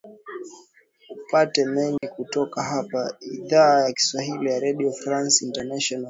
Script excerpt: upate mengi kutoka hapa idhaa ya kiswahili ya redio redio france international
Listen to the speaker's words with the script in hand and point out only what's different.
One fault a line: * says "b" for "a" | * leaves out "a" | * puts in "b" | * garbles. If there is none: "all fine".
* leaves out "redio"